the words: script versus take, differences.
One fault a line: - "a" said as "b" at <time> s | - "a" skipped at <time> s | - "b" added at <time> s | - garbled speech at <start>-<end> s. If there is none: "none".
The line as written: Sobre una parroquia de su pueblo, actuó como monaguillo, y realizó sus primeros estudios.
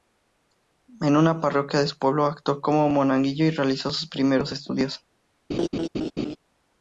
- "Sobre" said as "En" at 1.0 s